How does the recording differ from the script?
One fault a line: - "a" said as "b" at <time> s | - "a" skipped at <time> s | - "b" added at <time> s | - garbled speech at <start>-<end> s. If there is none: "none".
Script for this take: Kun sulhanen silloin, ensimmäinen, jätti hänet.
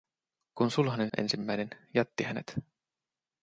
- "silloin" skipped at 1.1 s